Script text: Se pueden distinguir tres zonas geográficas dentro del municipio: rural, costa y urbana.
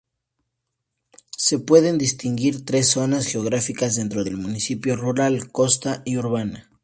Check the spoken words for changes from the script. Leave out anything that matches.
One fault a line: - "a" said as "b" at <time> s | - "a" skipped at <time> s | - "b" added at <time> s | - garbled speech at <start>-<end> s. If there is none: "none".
none